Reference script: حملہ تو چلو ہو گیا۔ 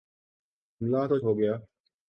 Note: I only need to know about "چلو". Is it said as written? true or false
false